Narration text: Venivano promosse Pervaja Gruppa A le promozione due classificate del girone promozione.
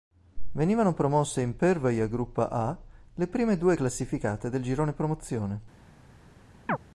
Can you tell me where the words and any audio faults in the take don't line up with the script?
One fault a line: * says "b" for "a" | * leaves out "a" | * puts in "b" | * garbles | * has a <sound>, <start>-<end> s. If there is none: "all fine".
* puts in "in"
* says "prime" for "promozione"
* has a chirp, 6.7-6.8 s